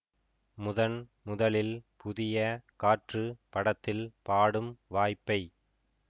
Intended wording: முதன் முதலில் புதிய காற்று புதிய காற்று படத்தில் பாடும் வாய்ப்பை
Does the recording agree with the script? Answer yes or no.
no